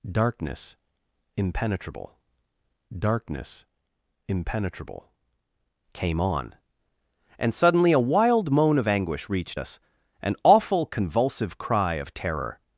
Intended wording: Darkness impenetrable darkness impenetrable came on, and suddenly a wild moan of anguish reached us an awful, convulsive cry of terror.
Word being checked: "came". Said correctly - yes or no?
yes